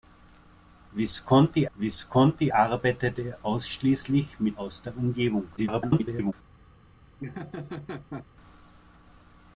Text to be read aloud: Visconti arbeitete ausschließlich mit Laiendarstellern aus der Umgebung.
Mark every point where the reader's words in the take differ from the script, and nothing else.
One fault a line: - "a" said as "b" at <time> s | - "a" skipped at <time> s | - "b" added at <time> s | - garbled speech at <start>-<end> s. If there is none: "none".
- "visconti" added at 1.8 s
- "Laiendarstellern" skipped at 4.6 s
- garbled speech at 5.6-6.3 s